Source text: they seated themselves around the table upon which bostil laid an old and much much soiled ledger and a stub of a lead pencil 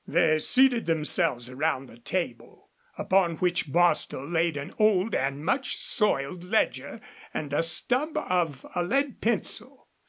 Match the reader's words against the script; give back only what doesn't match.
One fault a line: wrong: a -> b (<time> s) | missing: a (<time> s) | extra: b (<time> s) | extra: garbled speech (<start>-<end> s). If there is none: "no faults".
missing: much (5.7 s)